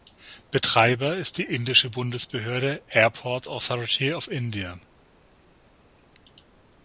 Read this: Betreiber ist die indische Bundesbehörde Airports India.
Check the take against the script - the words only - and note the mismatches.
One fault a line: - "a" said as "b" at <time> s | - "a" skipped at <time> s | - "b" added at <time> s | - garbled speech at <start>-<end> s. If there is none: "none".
- "Authority of" added at 3.5 s